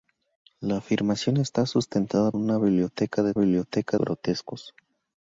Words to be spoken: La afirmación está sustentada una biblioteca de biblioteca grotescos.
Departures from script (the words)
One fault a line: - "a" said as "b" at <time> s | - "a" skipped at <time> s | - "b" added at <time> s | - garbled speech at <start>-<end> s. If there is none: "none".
none